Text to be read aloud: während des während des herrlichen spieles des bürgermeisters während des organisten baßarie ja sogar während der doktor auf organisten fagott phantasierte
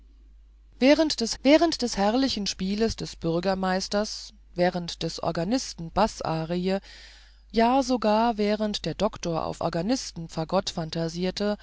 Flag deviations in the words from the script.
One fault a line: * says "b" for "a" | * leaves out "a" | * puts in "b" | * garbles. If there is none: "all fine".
all fine